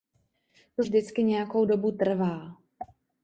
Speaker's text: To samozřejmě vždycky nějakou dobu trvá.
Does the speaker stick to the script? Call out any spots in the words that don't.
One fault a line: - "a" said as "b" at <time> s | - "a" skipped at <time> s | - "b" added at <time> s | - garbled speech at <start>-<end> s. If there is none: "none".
- "samozřejmě" skipped at 0.8 s